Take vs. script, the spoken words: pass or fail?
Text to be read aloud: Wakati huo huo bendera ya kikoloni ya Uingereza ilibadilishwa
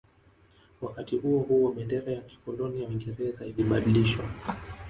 pass